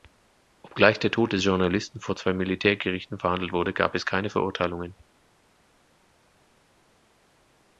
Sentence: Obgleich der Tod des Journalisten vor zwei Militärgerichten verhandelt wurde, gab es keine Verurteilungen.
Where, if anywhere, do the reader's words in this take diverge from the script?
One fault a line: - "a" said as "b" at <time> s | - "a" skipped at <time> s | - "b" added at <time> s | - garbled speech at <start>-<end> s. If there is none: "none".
none